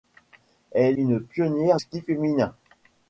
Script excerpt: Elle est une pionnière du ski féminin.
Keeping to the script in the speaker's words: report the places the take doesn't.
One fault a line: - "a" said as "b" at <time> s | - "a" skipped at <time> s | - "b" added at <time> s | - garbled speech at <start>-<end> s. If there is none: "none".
- "est" skipped at 1.0 s
- "du" skipped at 1.8 s